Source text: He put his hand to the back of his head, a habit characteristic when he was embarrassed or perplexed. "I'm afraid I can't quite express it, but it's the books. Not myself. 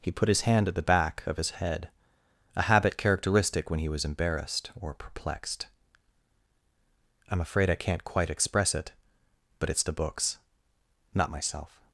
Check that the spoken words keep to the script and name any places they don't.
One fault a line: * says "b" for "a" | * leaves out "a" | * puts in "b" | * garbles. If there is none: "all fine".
* says "at" for "to"